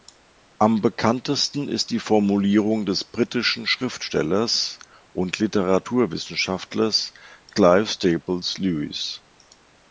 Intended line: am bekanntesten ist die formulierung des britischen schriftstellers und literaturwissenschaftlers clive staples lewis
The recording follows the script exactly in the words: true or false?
true